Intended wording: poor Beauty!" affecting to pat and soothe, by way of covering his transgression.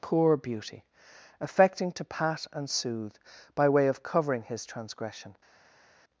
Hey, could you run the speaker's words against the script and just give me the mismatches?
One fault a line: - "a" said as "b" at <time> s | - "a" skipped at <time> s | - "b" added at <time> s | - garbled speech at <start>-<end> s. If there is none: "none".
none